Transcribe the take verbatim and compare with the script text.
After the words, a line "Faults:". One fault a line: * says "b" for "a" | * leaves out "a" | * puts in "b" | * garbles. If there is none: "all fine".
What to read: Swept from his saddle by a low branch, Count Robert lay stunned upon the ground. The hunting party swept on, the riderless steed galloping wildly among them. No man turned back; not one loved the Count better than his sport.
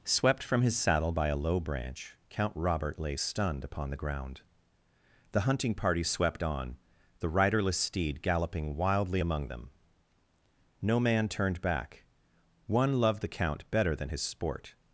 Swept from his saddle by a low branch, Count Robert lay stunned upon the ground. The hunting party swept on, the riderless steed galloping wildly among them. No man turned back; one loved the Count better than his sport.
Faults:
* leaves out "not"